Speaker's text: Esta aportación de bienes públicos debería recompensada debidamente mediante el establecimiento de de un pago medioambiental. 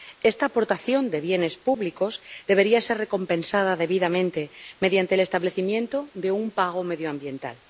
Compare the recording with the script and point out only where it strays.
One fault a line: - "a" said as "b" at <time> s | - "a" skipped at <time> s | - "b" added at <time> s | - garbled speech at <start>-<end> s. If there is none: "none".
- "ser" added at 2.8 s
- "de" skipped at 6.3 s